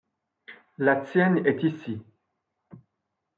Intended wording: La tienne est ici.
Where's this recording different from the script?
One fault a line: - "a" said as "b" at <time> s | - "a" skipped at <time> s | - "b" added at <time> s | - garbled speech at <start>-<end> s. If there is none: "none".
none